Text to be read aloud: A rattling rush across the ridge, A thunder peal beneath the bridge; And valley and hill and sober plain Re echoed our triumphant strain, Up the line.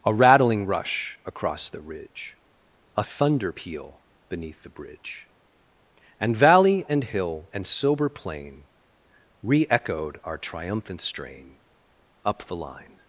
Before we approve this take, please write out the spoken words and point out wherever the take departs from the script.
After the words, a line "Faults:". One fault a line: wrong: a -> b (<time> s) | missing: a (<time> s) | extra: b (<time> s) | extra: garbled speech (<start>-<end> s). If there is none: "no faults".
A rattling rush across the ridge, A thunder peal beneath the bridge; And valley and hill and sober plain Re echoed our triumphant strain, Up the line.
Faults:
no faults